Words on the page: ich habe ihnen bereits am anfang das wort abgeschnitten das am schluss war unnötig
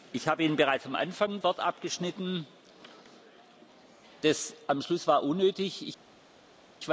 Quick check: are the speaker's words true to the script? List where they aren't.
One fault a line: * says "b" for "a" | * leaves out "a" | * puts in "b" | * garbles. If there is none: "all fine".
* leaves out "das"